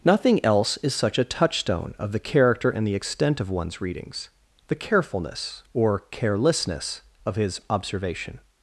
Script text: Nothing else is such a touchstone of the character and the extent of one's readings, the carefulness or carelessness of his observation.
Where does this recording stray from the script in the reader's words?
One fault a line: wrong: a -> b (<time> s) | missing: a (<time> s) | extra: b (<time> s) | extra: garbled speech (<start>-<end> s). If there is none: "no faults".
no faults